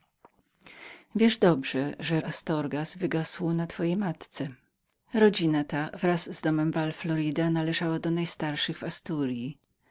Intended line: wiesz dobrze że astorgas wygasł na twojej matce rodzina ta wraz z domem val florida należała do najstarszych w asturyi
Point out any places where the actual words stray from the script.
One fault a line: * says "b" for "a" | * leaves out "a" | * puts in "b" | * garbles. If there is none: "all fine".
all fine